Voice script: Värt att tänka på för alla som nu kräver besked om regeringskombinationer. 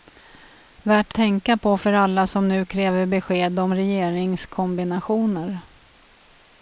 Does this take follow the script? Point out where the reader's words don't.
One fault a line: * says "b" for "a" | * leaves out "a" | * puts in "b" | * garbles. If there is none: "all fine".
* leaves out "att"